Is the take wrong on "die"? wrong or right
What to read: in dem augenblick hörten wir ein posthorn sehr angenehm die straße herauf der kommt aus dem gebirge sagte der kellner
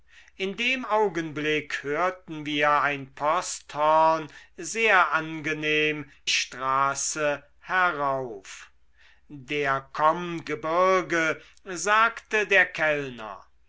wrong